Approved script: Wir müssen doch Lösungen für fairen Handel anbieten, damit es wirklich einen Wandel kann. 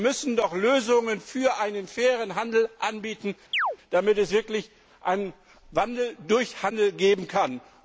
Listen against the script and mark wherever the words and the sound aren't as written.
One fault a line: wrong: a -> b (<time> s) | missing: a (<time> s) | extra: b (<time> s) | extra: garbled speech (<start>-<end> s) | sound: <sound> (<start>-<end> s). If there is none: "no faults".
extra: einen (1.6 s)
sound: chirp (3.5-3.8 s)
extra: durch Handel geben (6.3 s)